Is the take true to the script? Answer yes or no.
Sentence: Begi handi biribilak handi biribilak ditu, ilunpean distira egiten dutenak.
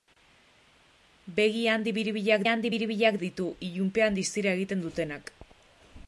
yes